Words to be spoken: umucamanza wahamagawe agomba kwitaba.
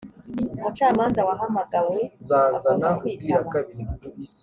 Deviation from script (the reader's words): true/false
false